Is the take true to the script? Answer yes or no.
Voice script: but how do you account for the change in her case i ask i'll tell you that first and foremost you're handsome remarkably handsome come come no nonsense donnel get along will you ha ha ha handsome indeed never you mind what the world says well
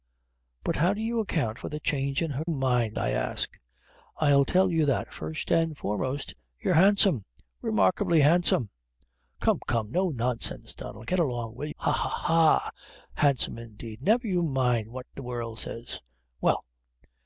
no